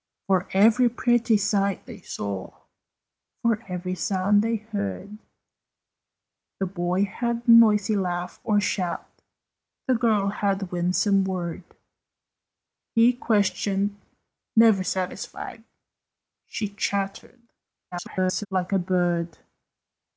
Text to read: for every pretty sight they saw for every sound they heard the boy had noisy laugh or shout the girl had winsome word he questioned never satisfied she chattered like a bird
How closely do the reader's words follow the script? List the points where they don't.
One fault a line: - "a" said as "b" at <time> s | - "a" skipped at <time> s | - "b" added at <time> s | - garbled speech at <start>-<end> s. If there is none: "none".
- garbled speech at 17.9-18.5 s